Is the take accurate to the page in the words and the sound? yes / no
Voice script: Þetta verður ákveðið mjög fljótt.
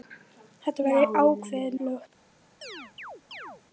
no